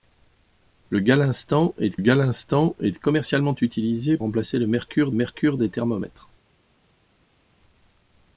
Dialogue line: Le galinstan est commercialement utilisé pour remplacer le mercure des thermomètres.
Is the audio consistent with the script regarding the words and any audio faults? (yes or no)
no